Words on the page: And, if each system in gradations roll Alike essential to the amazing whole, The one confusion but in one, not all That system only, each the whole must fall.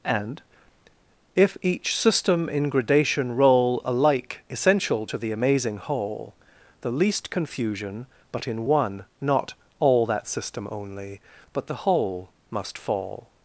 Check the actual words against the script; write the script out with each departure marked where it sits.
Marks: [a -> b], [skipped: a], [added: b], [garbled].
And, if each system in [gradations -> gradation] roll Alike essential to the amazing whole, The [one -> least] confusion but in one, not all That system only, [each -> but] the whole must fall.